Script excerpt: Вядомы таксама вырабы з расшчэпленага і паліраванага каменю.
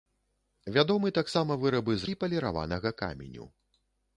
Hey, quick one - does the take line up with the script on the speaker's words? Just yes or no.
no